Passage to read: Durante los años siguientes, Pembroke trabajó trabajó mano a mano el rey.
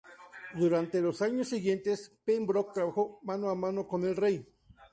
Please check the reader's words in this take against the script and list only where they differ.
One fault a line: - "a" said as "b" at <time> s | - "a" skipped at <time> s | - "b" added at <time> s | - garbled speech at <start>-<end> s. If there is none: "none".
- "trabajó" skipped at 3.2 s
- "con" added at 3.9 s